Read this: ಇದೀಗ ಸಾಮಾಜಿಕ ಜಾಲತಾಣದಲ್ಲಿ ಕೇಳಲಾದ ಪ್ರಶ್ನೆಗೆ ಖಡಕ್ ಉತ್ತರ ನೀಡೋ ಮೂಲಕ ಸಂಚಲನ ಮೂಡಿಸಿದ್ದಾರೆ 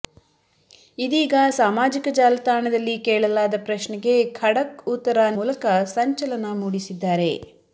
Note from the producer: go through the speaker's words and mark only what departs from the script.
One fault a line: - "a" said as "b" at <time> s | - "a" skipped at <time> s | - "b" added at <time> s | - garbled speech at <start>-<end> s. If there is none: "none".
- "ನೀಡೋ" skipped at 5.3 s